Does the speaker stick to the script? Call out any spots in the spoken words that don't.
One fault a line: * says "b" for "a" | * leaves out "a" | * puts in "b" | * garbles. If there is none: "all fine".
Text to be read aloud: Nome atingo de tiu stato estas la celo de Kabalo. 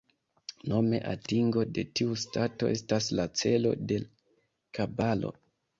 all fine